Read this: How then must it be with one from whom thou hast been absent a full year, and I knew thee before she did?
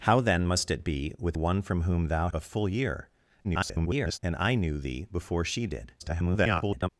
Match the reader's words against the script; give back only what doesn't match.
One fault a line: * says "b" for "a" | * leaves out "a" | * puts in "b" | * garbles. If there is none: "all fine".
* leaves out "hast been absent"
* garbles
* garbles